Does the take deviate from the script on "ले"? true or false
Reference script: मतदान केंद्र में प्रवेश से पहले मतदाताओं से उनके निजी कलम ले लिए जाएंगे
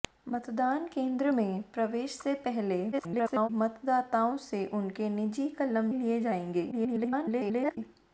true